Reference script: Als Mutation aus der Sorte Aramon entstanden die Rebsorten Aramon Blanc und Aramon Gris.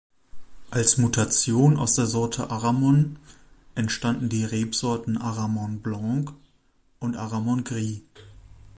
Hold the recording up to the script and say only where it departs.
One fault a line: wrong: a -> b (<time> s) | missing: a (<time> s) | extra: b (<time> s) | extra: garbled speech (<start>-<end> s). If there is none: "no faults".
no faults